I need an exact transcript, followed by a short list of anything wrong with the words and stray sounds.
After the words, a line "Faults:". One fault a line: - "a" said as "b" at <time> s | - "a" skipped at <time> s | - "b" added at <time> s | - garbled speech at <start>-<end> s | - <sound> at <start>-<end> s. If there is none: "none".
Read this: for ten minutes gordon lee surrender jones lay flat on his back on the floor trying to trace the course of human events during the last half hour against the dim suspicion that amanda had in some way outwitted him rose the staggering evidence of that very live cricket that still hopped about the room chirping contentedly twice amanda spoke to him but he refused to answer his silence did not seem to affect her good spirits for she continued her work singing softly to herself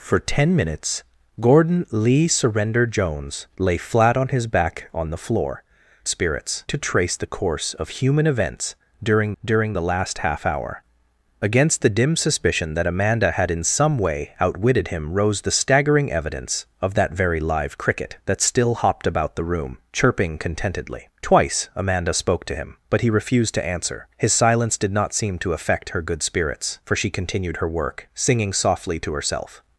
for ten minutes gordon lee surrender jones lay flat on his back on the floor spirits to trace the course of human events during during the last half hour against the dim suspicion that amanda had in some way outwitted him rose the staggering evidence of that very live cricket that still hopped about the room chirping contentedly twice amanda spoke to him but he refused to answer his silence did not seem to affect her good spirits for she continued her work singing softly to herself
Faults:
- "trying" said as "spirits" at 6.1 s
- "during" added at 9.4 s